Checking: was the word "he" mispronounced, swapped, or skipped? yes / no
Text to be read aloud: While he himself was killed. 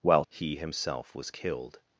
no